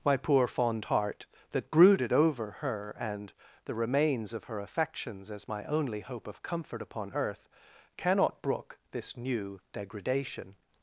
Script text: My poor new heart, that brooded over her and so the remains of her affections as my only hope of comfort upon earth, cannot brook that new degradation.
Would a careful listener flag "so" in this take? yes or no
yes